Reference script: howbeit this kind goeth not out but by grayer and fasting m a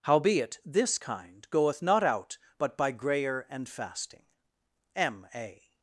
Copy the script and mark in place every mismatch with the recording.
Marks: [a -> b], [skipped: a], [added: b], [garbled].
howbeit this kind goeth not out but by grayer and fasting m a